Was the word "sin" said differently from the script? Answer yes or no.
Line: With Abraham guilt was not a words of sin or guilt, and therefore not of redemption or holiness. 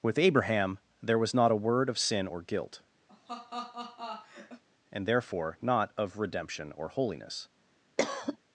no